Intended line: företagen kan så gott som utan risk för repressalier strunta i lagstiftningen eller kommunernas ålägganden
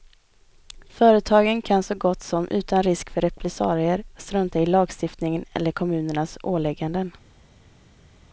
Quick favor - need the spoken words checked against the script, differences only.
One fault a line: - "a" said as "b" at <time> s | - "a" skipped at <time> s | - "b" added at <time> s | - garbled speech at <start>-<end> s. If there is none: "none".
none